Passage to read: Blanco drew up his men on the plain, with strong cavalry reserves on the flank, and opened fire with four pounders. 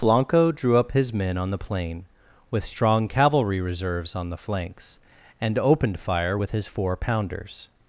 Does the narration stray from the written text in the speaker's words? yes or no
yes